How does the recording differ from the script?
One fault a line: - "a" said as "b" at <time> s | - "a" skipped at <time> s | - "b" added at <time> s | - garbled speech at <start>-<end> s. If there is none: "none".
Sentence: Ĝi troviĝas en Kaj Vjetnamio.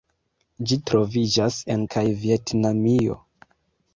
none